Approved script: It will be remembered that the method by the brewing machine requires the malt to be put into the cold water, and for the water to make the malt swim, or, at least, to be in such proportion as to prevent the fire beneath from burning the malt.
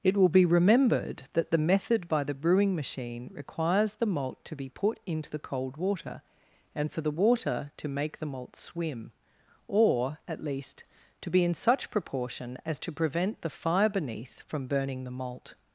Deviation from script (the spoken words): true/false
false